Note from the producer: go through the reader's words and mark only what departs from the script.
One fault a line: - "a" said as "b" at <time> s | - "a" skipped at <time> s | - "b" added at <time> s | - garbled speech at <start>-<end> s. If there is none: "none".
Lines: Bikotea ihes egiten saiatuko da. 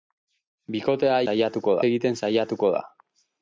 - "ihes" said as "saiatuko" at 1.3 s